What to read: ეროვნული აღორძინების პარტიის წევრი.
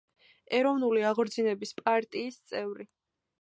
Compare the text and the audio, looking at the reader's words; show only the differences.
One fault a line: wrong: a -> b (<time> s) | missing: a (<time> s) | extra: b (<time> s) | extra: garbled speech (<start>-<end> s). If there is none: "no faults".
no faults